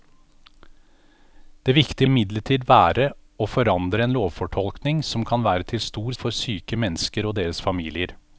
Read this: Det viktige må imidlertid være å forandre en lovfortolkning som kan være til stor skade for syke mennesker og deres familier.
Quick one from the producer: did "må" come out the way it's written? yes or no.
no